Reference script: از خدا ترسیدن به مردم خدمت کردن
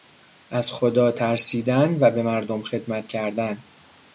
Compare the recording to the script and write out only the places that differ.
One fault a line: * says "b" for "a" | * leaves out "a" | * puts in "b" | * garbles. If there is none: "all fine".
* puts in "و"